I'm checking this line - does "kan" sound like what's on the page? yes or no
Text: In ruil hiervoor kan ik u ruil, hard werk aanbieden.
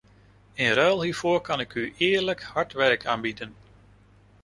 yes